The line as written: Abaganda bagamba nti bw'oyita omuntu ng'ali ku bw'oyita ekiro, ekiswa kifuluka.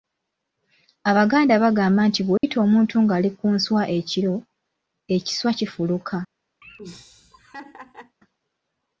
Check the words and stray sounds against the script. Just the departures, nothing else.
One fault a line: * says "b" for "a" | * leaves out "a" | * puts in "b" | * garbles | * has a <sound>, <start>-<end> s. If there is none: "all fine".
* has a dropout, 2.4-2.4 s
* says "nswa" for "bw'oyita"
* has a laugh, 6.6-8.2 s